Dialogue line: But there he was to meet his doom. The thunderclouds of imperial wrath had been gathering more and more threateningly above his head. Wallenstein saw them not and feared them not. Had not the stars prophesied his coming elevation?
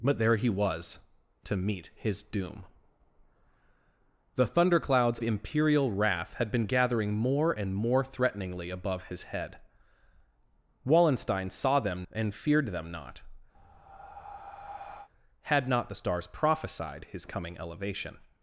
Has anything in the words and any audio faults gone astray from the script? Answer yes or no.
yes